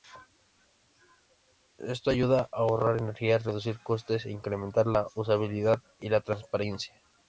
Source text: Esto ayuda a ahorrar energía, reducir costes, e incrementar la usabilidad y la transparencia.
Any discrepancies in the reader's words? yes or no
no